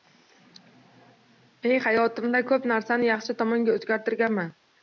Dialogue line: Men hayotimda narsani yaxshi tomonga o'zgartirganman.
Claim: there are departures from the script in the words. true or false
true